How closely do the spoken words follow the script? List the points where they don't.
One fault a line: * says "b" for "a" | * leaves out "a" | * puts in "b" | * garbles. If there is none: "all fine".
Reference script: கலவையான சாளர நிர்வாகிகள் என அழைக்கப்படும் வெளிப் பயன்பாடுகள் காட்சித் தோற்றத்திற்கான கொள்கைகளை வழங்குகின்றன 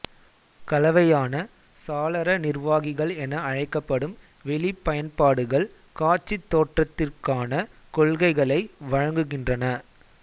all fine